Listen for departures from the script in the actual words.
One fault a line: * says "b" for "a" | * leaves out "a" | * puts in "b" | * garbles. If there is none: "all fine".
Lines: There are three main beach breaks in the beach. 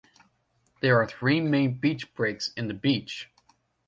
all fine